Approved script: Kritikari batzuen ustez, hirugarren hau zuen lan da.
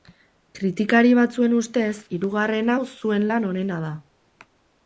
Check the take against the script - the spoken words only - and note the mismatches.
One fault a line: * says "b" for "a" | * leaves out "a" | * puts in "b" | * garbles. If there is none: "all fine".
* puts in "onena"